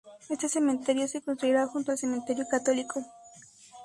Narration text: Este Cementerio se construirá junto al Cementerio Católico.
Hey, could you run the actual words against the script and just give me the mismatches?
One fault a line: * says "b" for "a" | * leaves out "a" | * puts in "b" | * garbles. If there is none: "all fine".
all fine